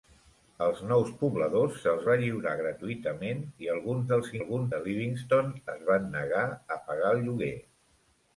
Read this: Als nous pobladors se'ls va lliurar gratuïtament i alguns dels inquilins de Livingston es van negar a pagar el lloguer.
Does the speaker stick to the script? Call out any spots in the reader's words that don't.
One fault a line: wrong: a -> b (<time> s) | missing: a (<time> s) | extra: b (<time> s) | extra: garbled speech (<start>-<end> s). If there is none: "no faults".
wrong: inquilins -> alguns (4.4 s)